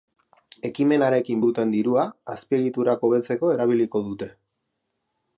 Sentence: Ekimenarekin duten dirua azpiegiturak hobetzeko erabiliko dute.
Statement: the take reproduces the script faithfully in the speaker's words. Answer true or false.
true